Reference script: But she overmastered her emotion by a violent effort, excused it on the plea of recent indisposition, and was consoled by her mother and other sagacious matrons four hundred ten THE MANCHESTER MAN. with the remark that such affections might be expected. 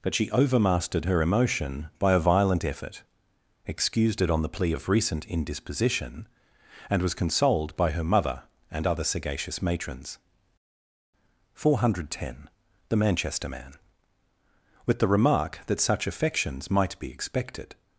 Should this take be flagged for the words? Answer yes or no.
no